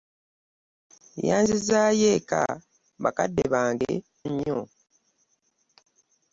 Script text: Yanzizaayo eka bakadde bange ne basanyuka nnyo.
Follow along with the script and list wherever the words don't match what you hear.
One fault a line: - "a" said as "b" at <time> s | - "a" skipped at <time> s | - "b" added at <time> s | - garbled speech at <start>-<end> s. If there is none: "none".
- "ne basanyuka" skipped at 3.9 s